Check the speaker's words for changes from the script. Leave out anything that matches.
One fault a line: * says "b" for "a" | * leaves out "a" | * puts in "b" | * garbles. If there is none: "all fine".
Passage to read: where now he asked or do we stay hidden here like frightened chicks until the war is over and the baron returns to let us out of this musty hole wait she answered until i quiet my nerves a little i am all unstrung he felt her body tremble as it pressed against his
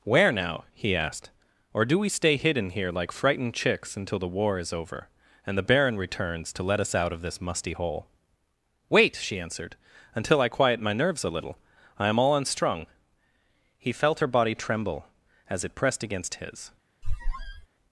all fine